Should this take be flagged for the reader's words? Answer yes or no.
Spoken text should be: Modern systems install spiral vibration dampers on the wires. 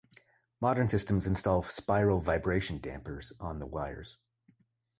no